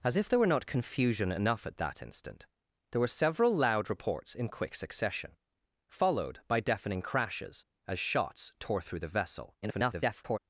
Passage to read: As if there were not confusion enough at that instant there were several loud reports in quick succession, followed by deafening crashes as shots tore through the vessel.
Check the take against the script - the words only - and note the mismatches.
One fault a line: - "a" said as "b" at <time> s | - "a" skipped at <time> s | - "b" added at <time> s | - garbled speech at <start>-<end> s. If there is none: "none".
- garbled speech at 9.6-10.4 s